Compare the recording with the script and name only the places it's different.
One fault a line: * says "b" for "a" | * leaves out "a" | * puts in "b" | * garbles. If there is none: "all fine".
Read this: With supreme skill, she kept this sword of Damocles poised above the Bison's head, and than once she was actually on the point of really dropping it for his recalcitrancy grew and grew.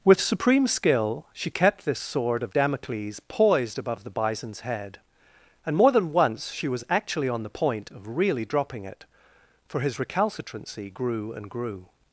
* puts in "more"